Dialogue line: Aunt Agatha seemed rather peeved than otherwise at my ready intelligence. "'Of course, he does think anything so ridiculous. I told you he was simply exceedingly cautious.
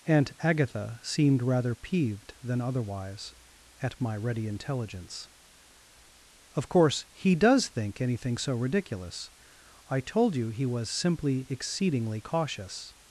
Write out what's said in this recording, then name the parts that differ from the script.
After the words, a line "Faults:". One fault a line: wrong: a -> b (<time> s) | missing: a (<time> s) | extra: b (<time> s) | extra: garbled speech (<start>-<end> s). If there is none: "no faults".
Aunt Agatha seemed rather peeved than otherwise at my ready intelligence. "'Of course, he does think anything so ridiculous. I told you he was simply exceedingly cautious.
Faults:
no faults